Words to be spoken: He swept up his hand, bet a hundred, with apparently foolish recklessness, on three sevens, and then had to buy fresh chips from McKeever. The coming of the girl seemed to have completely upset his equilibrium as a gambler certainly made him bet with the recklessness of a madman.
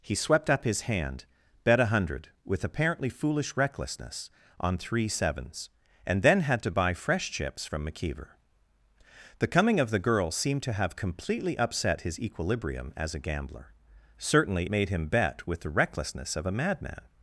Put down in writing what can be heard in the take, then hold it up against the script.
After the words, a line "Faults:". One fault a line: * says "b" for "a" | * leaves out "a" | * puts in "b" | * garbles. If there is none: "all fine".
He swept up his hand, bet a hundred, with apparently foolish recklessness, on three sevens, and then had to buy fresh chips from McKeever. The coming of the girl seemed to have completely upset his equilibrium as a gambler certainly made him bet with the recklessness of a madman.
Faults:
all fine